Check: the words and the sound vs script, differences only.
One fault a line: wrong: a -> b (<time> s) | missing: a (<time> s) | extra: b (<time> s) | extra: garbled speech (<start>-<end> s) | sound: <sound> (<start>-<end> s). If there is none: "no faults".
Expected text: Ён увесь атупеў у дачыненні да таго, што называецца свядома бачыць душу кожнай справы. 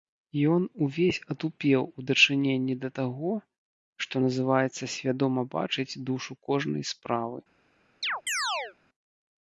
sound: chirp (8.0-8.8 s)